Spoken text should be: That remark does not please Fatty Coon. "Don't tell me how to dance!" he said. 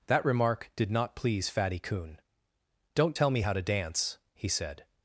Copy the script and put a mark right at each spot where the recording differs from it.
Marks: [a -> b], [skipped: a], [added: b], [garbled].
That remark [does -> did] not please Fatty Coon. "Don't tell me how to dance!" he said.